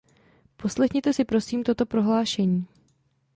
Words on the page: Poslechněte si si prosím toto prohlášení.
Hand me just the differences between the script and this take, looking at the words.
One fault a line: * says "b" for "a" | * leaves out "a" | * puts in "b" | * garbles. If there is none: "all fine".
* leaves out "si"